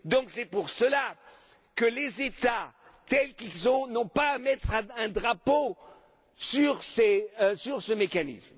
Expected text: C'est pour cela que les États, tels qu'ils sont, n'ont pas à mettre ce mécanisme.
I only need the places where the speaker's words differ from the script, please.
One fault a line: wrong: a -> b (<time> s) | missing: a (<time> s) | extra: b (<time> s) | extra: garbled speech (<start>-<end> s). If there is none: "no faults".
extra: un drapeau sur (4.7 s)